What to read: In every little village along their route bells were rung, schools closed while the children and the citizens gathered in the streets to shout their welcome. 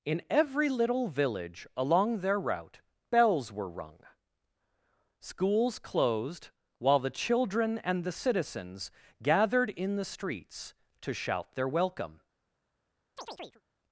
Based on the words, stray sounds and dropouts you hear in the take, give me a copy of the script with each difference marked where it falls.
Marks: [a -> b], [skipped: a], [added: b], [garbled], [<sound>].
In every little village along their route bells were rung, schools closed while the children and the citizens gathered in the streets to shout their welcome. [chirp]